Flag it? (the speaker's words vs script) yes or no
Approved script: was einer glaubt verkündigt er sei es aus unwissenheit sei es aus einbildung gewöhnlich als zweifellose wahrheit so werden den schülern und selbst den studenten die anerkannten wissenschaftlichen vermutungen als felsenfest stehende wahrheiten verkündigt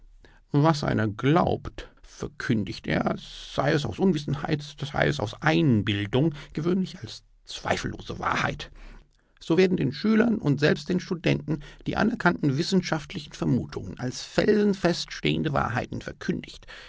no